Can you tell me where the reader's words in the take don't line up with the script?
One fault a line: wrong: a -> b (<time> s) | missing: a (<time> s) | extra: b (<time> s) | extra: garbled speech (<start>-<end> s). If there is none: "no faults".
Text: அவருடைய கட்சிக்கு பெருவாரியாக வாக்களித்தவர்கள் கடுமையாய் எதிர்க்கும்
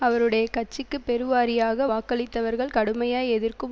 no faults